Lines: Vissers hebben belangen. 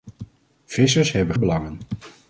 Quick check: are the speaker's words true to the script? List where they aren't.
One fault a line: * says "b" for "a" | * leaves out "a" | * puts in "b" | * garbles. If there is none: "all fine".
all fine